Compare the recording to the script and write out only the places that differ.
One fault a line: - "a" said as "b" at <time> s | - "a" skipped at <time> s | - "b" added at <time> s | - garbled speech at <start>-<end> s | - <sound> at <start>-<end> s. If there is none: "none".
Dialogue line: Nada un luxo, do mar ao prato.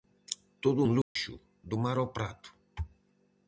- "Nada" said as "Todo" at 0.6 s
- dropout at 1.0-1.2 s